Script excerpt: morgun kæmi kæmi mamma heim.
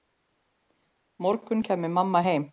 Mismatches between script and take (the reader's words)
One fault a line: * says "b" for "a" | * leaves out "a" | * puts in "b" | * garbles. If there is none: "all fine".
* leaves out "kæmi"